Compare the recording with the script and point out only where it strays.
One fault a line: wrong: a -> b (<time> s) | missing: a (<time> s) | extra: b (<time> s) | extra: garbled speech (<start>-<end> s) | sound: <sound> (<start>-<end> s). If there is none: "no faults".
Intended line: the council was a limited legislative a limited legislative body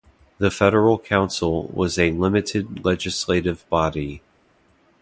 extra: federal (0.5 s)
missing: a limited legislative (3.7 s)